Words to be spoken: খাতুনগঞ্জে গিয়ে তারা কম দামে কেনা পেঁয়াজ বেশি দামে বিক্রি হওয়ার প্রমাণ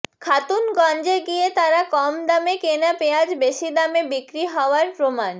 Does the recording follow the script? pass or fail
pass